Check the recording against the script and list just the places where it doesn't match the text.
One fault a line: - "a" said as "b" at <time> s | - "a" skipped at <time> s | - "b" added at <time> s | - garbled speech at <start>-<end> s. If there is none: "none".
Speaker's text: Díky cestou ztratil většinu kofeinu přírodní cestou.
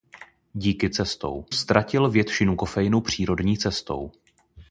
none